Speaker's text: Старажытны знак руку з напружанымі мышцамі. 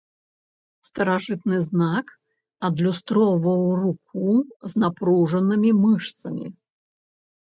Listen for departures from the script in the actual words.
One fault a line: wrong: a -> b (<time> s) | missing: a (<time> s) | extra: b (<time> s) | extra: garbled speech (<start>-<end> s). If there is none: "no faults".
extra: адлюстроўваў (2.7 s)